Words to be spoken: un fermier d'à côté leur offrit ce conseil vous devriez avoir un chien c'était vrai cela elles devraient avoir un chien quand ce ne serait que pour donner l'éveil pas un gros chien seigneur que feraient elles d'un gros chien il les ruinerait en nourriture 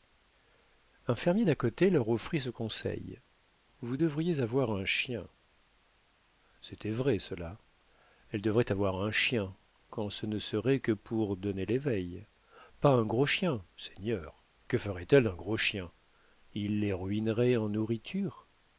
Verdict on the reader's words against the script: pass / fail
pass